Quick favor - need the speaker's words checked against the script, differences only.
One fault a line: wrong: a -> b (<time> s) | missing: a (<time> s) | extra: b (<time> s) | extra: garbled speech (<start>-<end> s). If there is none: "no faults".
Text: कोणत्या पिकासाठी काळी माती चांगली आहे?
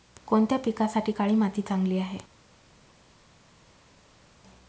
no faults